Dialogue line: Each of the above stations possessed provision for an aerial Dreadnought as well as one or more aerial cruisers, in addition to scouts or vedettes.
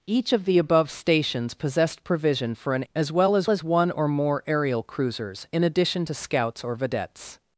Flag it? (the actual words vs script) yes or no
yes